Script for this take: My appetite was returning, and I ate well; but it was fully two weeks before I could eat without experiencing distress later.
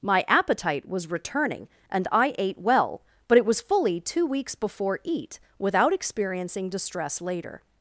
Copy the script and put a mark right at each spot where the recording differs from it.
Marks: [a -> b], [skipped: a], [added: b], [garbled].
My appetite was returning, and I ate well; but it was fully two weeks before [skipped: I could] eat without experiencing distress later.